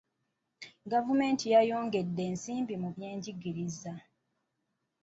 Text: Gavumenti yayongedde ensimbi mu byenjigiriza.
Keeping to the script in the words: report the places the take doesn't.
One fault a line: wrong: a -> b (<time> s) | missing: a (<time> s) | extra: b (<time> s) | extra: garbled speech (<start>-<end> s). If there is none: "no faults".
no faults